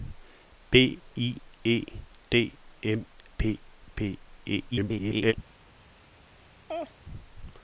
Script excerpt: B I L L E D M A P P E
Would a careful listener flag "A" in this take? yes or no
yes